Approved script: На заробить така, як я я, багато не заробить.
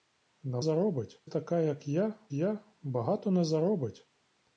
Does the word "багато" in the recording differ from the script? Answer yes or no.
no